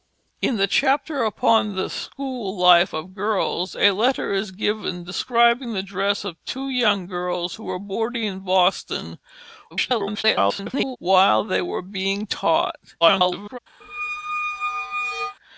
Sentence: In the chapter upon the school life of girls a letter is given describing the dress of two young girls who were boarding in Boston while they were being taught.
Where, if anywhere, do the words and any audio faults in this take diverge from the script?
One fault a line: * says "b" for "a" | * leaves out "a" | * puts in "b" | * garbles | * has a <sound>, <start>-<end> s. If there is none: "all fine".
* garbles
* garbles
* has a squeak, 13.8-15.4 s